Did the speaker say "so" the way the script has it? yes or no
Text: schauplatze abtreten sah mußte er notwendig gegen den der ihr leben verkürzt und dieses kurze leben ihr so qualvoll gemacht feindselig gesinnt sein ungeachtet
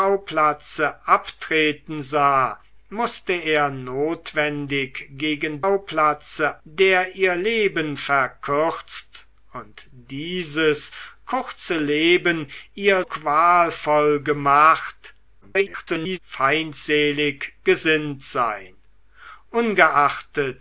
no